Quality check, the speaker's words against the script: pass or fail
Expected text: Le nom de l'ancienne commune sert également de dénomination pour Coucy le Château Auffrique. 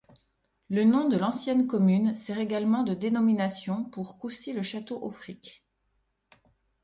pass